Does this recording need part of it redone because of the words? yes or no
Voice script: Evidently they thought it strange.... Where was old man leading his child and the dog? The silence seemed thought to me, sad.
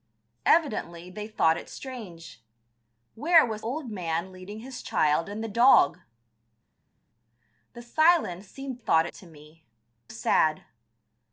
no